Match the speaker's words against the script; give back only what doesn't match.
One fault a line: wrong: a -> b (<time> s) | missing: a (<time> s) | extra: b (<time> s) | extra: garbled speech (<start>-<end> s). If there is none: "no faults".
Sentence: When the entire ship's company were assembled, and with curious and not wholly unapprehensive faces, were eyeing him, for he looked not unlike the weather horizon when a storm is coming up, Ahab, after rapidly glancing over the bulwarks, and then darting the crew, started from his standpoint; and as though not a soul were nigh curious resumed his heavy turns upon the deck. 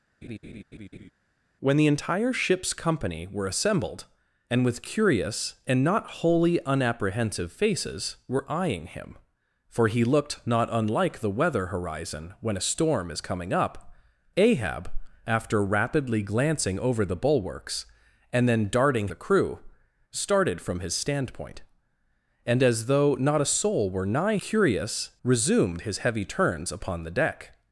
no faults